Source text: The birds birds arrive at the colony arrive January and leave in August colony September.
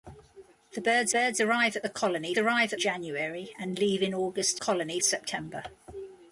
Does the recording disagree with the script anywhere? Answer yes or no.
no